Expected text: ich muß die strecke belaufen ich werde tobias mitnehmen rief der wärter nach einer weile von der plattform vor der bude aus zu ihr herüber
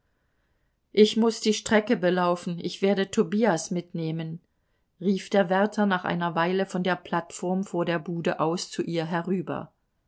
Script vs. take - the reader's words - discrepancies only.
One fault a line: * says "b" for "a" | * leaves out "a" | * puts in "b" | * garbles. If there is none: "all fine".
all fine